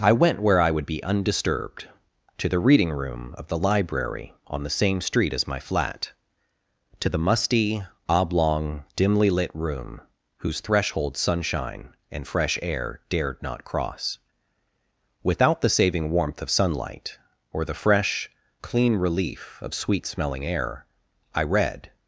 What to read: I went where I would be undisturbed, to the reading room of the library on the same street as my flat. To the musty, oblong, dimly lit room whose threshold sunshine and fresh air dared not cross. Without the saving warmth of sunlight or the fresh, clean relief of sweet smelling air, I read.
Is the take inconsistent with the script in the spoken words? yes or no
no